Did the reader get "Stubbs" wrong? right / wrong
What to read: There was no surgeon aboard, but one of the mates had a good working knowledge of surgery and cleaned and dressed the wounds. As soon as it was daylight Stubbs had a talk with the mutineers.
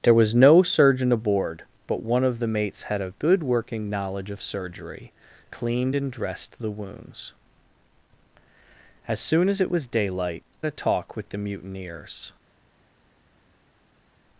wrong